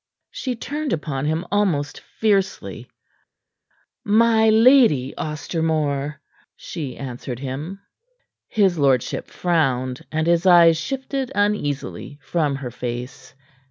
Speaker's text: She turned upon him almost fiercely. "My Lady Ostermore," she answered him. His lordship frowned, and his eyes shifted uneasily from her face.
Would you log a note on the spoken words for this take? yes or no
no